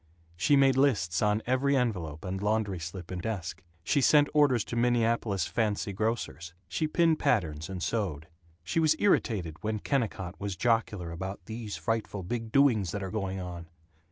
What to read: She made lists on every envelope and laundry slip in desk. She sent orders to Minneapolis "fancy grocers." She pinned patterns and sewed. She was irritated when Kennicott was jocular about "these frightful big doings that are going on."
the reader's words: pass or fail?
pass